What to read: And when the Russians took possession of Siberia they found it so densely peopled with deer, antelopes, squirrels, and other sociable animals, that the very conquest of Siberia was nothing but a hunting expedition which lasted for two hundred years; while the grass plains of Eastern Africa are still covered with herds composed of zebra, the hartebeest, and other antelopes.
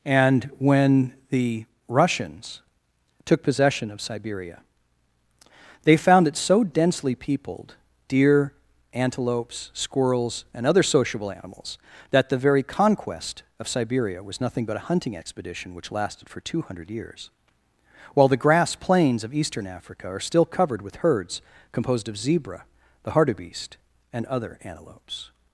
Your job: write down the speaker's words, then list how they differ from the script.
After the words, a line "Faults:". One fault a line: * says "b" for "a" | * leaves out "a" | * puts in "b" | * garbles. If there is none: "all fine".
And when the Russians took possession of Siberia they found it so densely peopled deer, antelopes, squirrels, and other sociable animals, that the very conquest of Siberia was nothing but a hunting expedition which lasted for two hundred years; while the grass plains of Eastern Africa are still covered with herds composed of zebra, the hartebeest, and other antelopes.
Faults:
* leaves out "with"